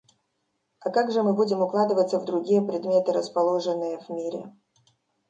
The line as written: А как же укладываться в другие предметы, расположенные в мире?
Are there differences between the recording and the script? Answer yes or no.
yes